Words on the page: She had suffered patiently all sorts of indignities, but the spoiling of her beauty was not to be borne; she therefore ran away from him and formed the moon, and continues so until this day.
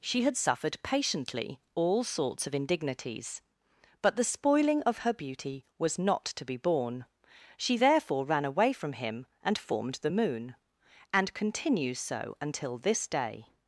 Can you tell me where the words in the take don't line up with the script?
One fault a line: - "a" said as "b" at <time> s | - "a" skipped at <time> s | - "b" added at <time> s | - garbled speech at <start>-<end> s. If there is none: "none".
none